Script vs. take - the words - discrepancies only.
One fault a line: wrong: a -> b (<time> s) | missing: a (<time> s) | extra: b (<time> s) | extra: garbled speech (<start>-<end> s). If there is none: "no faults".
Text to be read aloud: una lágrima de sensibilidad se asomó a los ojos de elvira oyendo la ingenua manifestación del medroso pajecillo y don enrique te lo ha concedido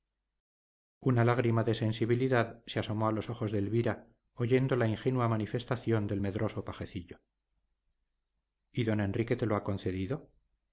no faults